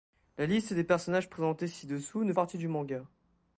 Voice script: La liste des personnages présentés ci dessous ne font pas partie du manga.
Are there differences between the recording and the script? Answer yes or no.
yes